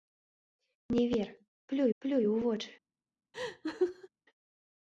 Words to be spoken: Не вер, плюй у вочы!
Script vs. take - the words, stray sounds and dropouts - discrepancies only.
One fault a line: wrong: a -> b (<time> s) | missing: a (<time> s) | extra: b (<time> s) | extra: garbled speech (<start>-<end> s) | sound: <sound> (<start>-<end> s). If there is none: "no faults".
extra: плюй (2.0 s)
sound: laugh (3.3-4.1 s)